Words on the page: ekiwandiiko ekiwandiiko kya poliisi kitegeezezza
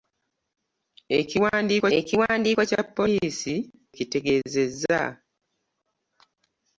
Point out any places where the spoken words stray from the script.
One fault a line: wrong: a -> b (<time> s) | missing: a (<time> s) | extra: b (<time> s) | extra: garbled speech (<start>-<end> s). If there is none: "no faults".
no faults